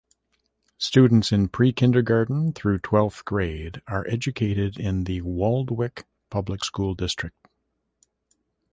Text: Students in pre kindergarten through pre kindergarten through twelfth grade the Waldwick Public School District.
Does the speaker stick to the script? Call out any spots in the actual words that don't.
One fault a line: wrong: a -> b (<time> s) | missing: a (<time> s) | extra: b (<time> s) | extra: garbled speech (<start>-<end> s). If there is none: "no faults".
wrong: pre kindergarten through twelfth grade -> twelfth grade are educated in (2.8 s)